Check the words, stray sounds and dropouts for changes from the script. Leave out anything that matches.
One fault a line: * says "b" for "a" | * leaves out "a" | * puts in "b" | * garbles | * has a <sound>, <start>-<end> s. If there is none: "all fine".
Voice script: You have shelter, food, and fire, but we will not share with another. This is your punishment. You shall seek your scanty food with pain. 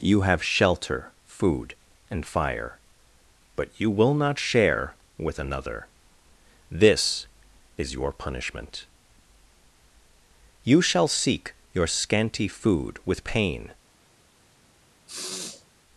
* says "you" for "we"
* has a sniff, 15.1-15.7 s